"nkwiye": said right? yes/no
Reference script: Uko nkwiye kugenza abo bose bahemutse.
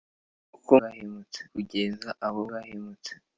no